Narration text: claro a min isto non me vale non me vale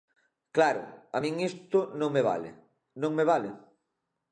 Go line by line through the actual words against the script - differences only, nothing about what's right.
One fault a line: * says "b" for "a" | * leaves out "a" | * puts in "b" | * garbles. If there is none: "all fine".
all fine